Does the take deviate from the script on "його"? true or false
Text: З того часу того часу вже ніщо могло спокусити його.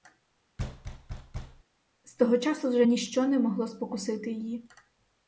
true